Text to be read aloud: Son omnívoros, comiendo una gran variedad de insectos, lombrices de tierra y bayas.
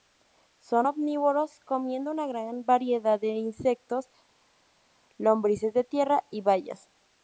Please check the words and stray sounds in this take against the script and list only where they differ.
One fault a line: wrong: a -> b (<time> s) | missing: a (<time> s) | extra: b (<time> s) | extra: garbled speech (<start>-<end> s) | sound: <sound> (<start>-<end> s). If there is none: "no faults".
no faults